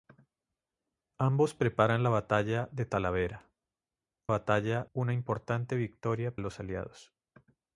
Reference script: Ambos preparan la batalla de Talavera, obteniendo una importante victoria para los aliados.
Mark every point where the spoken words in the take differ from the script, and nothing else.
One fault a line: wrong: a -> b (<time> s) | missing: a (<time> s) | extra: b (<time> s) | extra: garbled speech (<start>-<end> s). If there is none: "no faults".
wrong: obteniendo -> batalla (4.3 s)
missing: para (6.4 s)